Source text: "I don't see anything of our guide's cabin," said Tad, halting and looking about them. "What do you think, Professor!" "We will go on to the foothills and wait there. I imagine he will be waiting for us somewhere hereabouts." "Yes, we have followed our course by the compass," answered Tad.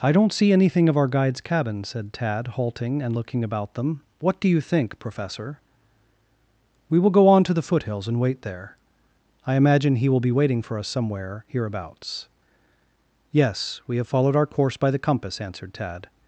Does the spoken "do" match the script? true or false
true